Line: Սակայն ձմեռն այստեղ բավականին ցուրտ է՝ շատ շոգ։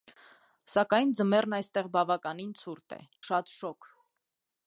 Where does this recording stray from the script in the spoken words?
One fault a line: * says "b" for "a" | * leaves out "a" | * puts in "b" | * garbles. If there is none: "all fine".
all fine